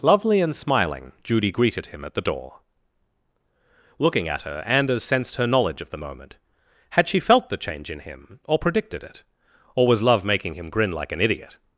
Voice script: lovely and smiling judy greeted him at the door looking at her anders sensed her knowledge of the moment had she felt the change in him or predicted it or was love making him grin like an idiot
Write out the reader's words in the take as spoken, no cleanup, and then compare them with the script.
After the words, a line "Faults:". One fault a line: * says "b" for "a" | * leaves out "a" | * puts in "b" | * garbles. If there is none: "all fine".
lovely and smiling judy greeted him at the door looking at her anders sensed her knowledge of the moment had she felt the change in him or predicted it or was love making him grin like an idiot
Faults:
all fine